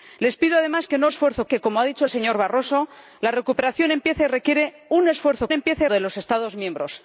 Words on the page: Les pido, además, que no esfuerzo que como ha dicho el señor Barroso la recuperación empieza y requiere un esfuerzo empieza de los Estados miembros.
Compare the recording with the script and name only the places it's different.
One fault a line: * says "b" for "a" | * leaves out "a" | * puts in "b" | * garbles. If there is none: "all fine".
all fine